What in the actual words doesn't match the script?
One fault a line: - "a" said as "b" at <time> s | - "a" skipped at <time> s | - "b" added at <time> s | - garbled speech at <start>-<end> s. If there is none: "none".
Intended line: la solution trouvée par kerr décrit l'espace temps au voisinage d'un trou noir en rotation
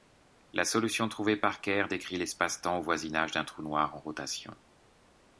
none